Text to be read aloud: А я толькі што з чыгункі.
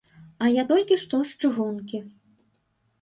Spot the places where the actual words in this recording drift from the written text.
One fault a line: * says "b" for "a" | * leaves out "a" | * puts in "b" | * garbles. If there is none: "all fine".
all fine